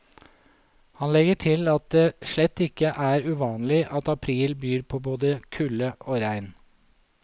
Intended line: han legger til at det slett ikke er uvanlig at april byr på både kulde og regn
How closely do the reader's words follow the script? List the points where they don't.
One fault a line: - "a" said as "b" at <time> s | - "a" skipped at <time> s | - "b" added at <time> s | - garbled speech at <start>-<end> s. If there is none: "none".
none